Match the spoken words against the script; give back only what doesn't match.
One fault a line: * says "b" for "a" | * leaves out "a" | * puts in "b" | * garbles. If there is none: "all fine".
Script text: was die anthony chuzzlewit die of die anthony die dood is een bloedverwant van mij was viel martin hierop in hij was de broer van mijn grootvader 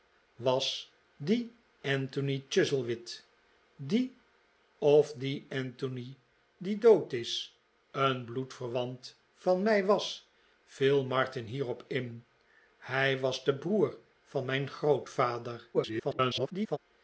* garbles